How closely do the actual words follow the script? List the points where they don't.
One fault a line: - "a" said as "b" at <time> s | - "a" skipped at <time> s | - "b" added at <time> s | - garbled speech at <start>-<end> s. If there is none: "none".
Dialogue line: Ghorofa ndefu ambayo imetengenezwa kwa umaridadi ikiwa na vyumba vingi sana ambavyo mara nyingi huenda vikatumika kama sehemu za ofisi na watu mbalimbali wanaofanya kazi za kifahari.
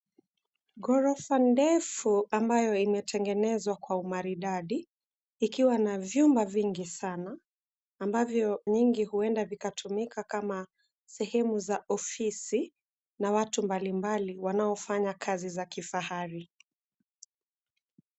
- "mara" skipped at 8.6 s